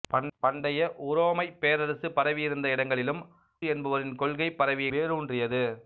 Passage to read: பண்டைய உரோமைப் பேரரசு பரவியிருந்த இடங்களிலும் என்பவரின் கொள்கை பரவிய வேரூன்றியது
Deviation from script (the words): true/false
false